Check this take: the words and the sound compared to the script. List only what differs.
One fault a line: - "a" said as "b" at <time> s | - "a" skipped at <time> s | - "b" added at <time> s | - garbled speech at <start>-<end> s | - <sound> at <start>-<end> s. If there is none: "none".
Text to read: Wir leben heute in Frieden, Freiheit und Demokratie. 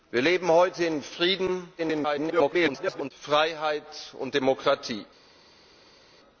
- garbled speech at 1.8-3.1 s